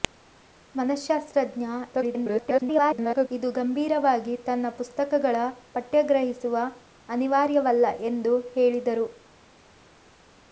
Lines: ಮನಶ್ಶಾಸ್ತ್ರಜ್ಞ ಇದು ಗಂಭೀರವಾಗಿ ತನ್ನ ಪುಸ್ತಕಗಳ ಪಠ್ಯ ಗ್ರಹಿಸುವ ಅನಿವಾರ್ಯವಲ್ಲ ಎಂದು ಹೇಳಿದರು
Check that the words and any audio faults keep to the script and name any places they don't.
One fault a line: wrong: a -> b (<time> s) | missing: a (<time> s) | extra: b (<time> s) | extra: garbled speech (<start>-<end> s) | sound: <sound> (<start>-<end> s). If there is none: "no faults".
extra: garbled speech (1.9-3.3 s)